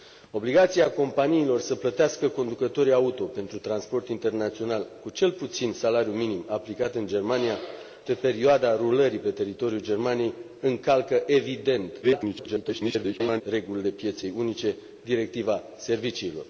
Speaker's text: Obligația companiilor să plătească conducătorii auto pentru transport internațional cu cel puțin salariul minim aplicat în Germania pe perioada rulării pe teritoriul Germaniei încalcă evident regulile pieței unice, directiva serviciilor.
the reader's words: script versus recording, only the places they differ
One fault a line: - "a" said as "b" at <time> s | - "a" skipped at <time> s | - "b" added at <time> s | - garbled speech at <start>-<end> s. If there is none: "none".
- garbled speech at 12.0-13.4 s